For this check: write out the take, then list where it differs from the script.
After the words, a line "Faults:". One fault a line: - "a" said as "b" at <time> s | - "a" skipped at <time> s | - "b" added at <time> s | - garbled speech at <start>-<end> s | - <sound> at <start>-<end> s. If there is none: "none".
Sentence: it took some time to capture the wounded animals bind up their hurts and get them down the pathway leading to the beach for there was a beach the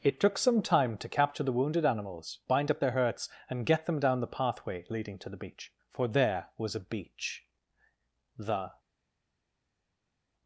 it took some time to capture the wounded animals bind up their hurts and get them down the pathway leading to the beach for there was a beach the
Faults:
none